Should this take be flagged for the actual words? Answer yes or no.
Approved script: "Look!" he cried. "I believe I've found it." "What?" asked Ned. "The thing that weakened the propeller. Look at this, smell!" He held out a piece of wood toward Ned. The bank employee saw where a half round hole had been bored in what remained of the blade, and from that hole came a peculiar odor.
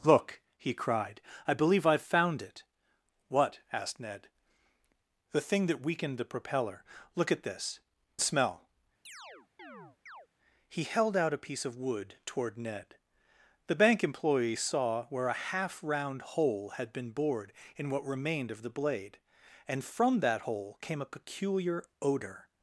no